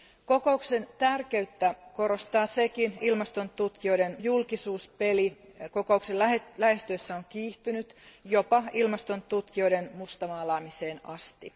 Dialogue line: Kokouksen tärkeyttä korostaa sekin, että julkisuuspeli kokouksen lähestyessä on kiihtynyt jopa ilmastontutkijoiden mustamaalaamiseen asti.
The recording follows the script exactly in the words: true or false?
false